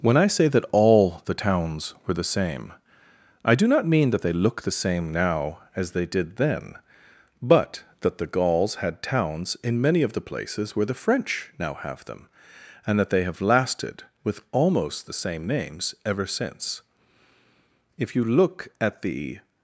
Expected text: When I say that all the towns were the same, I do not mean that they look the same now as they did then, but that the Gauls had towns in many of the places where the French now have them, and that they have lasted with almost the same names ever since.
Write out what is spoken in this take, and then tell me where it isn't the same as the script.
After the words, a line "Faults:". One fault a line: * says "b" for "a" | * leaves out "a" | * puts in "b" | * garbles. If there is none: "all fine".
When I say that all the towns were the same, I do not mean that they look the same now as they did then, but that the Gauls had towns in many of the places where the French now have them, and that they have lasted with almost the same names ever since. If you look at the
Faults:
* puts in "If you look at the"